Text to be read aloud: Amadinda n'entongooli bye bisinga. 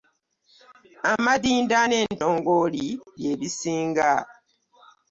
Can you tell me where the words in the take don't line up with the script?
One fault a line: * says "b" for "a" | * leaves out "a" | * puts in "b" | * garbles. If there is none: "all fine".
all fine